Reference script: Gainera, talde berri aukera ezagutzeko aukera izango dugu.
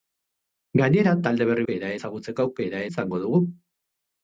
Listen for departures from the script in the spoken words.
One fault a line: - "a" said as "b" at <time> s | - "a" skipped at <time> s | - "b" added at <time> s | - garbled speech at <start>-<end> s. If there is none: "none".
none